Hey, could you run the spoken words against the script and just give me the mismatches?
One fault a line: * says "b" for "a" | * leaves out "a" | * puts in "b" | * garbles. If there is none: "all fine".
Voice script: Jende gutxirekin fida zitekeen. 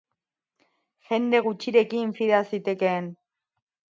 all fine